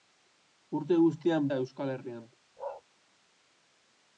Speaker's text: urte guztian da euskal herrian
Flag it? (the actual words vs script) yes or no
no